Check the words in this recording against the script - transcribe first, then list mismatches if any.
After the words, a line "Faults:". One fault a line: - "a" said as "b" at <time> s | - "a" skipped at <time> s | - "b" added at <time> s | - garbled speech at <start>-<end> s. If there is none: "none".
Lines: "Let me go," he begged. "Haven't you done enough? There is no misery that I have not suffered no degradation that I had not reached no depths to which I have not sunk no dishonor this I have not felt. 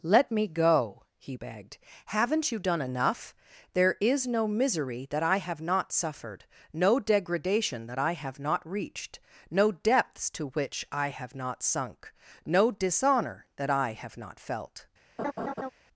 "Let me go," he begged. "Haven't you done enough? There is no misery that I have not suffered no degradation that I have not reached no depths to which I have not sunk no dishonor that I have not felt.
Faults:
- "had" said as "have" at 8.1 s
- "this" said as "that" at 13.6 s